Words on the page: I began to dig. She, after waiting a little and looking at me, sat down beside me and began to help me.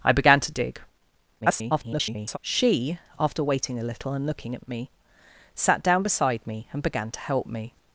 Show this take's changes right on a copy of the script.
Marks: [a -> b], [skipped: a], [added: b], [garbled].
I began to dig. [garbled] She, after waiting a little and looking at [added: at] me, sat down beside me and began to help me.